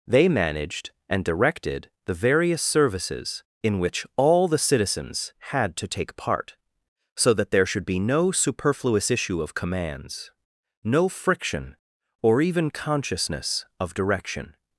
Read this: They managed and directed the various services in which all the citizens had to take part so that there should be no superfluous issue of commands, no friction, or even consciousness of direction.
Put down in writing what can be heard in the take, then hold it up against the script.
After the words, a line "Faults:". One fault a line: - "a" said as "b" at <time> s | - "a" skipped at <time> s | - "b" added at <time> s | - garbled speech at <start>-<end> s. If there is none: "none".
They managed and directed the various services in which all the citizens had to take part so that there should be no superfluous issue of commands, no friction, or even consciousness of direction.
Faults:
none